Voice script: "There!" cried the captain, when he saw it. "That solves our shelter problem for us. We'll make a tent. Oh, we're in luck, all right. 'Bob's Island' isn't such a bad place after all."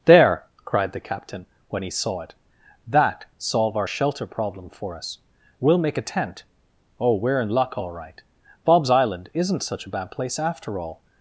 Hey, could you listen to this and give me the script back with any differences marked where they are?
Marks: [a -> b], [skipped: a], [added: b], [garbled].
"There!" cried the captain, when he saw it. "That [solves -> solve] our shelter problem for us. We'll make a tent. Oh, we're in luck, all right. 'Bob's Island' isn't such a bad place after all."